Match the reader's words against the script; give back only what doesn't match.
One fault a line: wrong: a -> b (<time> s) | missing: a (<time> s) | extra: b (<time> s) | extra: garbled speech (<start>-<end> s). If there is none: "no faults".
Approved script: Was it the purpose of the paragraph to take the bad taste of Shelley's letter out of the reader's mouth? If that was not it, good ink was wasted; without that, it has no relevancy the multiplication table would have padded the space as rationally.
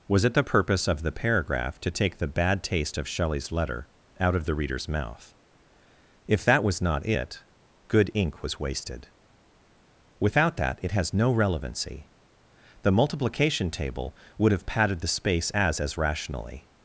extra: as (15.8 s)